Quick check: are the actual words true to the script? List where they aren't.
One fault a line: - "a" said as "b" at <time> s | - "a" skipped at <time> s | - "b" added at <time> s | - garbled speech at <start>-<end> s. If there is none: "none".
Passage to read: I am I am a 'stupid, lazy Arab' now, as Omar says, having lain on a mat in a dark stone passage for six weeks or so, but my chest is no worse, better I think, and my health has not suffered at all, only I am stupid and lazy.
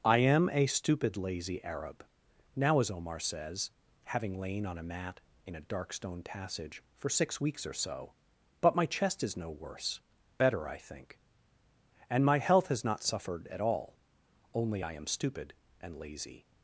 - "I am" skipped at 0.5 s